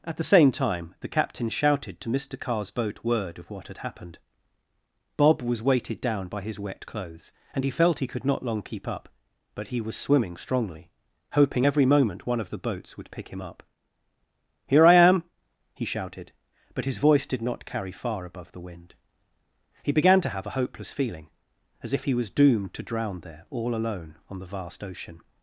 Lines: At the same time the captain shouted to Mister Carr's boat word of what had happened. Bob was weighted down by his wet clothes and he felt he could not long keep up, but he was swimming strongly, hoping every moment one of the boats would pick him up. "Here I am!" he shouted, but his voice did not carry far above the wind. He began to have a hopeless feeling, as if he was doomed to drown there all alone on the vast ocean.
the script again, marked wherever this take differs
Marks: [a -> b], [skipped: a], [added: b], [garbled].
At the same time the captain shouted to Mister Carr's boat word of what had happened. Bob was weighted down by his wet clothes and he felt he could not long keep up, but he was swimming strongly, hoping every moment one of the boats would pick him up. "Here I am!" he shouted, but his voice did not carry far above the wind. He began to have a hopeless feeling, as if he was doomed to drown there all alone on the vast ocean.